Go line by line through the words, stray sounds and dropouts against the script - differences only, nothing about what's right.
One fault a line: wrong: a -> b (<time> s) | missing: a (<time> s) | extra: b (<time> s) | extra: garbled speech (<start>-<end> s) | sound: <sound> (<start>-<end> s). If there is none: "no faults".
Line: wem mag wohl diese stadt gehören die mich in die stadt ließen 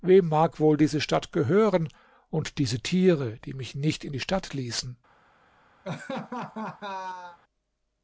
extra: und diese tiere (2.3 s)
extra: nicht (3.8 s)
sound: laugh (5.8-7.4 s)